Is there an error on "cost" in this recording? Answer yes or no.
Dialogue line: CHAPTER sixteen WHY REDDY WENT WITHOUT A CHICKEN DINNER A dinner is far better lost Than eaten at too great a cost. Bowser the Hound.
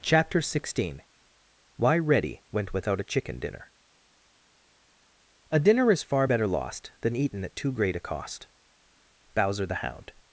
no